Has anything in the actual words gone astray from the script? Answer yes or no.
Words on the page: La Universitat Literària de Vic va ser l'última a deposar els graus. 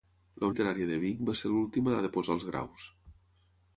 yes